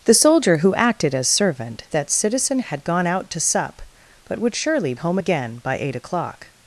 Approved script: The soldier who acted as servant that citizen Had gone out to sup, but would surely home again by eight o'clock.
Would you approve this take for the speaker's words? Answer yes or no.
yes